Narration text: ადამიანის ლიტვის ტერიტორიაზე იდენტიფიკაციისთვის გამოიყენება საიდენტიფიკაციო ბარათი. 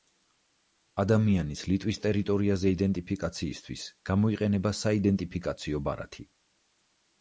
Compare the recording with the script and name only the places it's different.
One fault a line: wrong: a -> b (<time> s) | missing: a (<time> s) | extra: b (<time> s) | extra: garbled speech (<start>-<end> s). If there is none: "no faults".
no faults